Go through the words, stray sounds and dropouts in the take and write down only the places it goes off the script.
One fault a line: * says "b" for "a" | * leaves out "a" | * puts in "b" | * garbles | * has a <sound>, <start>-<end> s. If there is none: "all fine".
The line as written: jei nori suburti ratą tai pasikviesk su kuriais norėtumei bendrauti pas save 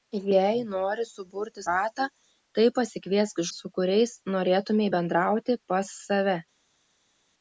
all fine